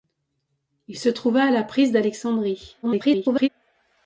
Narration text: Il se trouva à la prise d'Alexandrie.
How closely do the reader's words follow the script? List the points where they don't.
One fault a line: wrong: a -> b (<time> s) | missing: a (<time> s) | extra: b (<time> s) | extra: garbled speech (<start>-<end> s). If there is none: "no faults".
extra: garbled speech (2.8-3.5 s)